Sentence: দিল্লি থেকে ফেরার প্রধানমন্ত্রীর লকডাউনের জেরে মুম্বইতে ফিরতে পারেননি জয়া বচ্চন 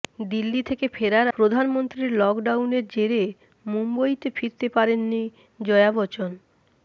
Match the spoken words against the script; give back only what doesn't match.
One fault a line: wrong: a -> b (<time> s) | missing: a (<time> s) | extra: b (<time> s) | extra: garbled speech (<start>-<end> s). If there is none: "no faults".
no faults